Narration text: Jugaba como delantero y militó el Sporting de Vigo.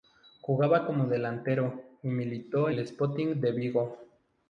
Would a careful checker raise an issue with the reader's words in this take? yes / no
no